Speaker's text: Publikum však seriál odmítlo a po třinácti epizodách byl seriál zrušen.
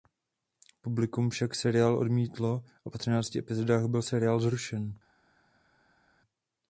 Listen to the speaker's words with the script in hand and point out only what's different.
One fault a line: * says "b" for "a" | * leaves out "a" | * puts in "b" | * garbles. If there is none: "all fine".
all fine